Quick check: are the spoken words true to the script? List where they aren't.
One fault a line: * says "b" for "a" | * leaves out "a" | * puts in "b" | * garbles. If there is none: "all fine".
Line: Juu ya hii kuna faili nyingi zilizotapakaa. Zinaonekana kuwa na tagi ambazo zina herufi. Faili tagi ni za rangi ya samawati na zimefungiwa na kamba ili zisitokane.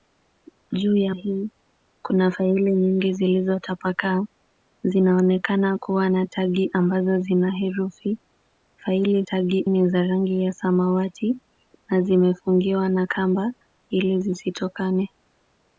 all fine